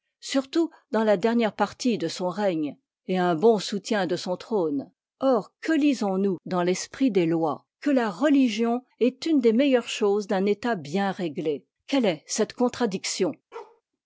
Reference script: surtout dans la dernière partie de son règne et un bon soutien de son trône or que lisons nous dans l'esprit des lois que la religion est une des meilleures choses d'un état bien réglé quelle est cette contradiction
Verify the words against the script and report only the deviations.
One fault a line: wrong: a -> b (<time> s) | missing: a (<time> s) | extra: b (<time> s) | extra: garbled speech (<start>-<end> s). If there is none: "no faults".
no faults